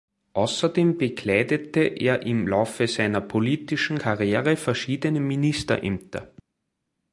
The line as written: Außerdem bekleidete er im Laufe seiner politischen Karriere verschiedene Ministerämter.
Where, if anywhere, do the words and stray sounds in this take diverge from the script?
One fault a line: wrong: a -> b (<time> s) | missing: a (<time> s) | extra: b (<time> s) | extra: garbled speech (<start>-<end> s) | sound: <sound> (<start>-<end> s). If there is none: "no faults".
no faults